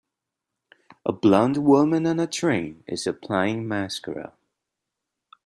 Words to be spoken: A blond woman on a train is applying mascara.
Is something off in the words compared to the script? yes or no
no